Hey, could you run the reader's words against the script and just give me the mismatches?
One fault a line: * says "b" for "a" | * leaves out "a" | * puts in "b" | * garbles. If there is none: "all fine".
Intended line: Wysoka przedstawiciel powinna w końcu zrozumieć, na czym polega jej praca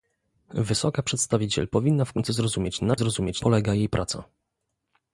* says "zrozumieć" for "czym"